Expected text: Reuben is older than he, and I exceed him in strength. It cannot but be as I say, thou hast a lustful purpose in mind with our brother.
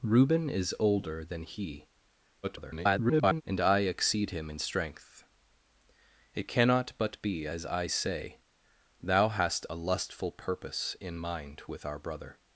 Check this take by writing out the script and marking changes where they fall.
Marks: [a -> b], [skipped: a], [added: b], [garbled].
Reuben is older than he, [garbled] and I exceed him in strength. It cannot but be as I say, thou hast a lustful purpose in mind with our brother.